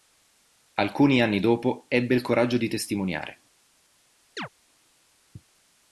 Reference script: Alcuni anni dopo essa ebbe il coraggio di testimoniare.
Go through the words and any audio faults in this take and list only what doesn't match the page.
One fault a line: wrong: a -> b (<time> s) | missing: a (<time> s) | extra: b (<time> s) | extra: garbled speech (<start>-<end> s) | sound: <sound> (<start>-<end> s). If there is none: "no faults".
missing: essa (1.9 s)
sound: chirp (4.4-4.5 s)